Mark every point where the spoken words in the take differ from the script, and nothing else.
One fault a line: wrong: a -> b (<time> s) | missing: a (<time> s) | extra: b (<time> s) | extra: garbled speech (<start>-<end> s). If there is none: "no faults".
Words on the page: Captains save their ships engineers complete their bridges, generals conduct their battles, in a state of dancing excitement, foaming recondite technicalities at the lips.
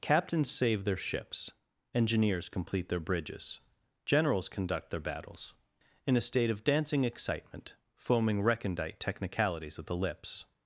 no faults